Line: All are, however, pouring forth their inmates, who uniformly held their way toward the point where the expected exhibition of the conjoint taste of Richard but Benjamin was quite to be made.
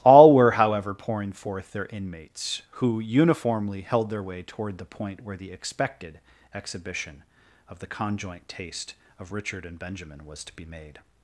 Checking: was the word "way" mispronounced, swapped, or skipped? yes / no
no